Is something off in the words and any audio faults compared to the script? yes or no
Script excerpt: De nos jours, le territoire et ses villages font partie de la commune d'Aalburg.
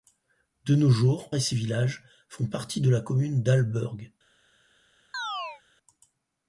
yes